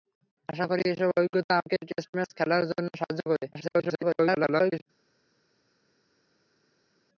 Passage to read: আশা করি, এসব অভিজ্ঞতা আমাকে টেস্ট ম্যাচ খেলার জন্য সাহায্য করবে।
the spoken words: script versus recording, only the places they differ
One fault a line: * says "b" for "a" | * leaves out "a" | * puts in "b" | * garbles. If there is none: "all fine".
* garbles